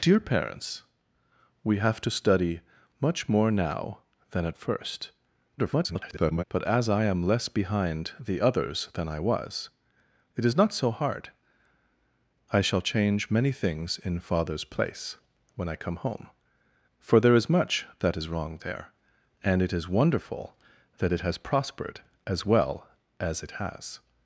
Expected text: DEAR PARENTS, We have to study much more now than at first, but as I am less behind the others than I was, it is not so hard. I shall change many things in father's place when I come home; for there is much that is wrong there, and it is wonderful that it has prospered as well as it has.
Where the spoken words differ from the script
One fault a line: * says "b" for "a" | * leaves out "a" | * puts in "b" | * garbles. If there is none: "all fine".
* garbles